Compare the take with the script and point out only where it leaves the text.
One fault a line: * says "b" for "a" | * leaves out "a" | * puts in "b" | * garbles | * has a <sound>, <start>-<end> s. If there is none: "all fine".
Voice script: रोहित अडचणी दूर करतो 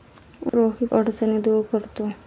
* has a dropout, 0.5-0.5 s